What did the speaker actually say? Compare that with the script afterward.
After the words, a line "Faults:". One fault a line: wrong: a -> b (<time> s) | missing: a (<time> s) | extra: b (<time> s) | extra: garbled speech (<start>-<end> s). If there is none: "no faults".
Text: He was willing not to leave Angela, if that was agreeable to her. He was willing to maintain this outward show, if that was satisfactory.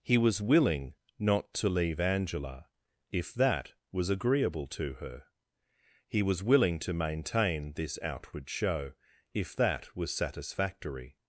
He was willing not to leave Angela, if that was agreeable to her. He was willing to maintain this outward show, if that was satisfactory.
Faults:
no faults